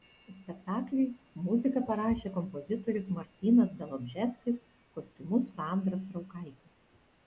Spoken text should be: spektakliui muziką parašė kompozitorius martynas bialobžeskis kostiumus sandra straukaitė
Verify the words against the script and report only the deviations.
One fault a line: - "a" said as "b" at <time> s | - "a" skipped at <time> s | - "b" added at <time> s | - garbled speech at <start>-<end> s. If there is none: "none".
none